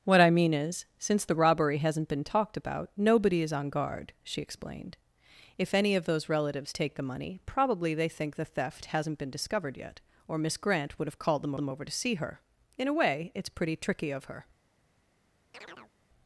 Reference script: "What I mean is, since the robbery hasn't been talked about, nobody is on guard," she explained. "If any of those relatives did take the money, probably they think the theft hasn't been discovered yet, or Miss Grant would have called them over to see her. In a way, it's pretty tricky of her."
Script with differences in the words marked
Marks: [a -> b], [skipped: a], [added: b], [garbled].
"What I mean is, since the robbery hasn't been talked about, nobody is on guard," she explained. "If any of those relatives [skipped: did] take the money, probably they think the theft hasn't been discovered yet, or Miss Grant would have called them [added: them] over to see her. In a way, it's pretty tricky of her."